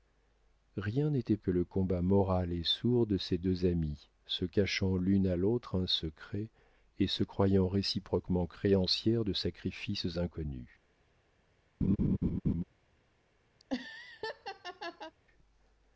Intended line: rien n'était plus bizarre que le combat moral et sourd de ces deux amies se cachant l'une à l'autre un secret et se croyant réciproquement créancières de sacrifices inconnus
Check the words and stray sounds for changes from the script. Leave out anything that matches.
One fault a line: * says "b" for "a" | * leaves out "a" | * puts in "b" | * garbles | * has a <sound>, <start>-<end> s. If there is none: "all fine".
* leaves out "plus bizarre"
* has a laugh, 11.8-12.6 s
* has a laugh, 13.6-15.1 s